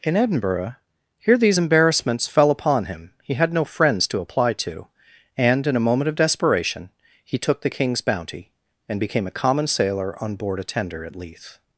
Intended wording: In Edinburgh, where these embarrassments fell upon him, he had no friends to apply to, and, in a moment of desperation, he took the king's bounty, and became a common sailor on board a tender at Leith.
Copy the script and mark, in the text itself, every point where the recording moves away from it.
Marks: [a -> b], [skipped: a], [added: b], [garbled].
In Edinburgh, [where -> here] these embarrassments fell upon him, he had no friends to apply to, and, in a moment of desperation, he took the king's bounty, and became a common sailor on board a tender at Leith.